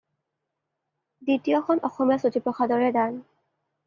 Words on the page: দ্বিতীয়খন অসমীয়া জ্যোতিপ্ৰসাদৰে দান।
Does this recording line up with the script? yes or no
yes